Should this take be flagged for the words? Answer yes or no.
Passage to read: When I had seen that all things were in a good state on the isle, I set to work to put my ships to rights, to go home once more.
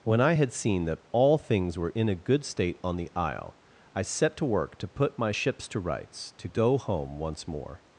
no